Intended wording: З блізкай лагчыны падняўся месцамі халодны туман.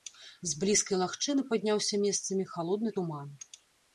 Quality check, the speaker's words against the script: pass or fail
pass